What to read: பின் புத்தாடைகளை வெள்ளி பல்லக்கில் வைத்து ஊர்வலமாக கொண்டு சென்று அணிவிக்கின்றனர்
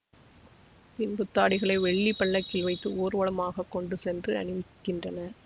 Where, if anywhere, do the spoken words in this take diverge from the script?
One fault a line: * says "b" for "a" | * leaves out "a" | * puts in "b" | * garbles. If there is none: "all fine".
all fine